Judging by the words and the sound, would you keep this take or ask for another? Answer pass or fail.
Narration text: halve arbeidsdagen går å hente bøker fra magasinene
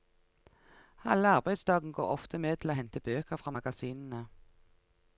fail